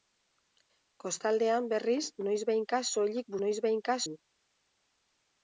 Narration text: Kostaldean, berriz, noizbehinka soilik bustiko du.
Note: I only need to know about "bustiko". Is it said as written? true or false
false